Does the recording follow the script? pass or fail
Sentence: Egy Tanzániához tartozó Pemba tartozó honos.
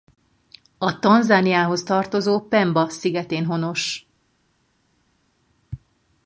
fail